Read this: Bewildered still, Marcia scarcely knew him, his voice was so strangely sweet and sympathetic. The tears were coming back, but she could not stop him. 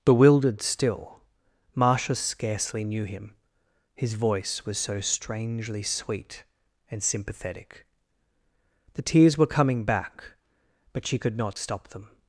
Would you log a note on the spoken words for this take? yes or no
yes